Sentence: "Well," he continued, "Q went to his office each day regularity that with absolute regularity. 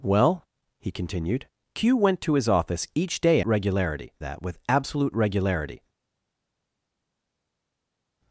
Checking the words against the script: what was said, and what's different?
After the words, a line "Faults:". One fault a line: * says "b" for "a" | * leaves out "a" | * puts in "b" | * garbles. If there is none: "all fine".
"Well," he continued, "Q went to his office each day regularity that with absolute regularity.
Faults:
all fine